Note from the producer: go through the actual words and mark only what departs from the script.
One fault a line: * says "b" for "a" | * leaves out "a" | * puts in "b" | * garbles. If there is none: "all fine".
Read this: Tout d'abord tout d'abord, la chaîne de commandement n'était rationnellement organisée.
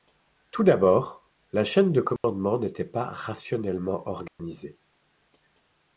* leaves out "tout d'abord"
* puts in "pas"